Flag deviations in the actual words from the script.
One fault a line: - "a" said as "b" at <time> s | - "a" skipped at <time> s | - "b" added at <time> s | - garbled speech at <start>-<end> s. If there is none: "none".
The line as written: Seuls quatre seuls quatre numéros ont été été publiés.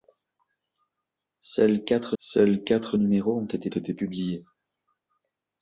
none